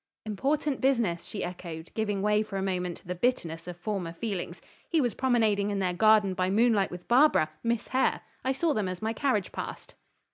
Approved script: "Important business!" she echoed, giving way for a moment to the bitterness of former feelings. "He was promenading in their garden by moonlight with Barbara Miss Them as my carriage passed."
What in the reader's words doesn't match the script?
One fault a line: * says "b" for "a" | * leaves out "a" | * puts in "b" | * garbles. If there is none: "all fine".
* puts in "Hare I saw"